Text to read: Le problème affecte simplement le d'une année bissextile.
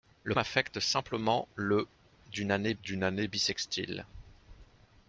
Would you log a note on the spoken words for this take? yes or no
yes